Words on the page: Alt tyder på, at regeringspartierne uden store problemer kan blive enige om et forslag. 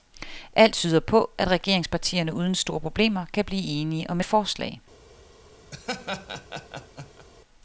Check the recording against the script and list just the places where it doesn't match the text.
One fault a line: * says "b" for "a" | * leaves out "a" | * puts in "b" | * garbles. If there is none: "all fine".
all fine